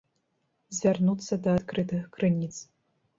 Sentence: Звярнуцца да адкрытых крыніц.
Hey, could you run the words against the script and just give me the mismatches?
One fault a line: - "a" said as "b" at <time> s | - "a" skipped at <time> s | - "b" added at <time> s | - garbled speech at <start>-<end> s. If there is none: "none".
none